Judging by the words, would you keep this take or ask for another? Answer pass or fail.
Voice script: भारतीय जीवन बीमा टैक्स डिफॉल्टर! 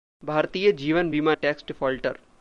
pass